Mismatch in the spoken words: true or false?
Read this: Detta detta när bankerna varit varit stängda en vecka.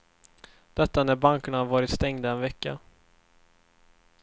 true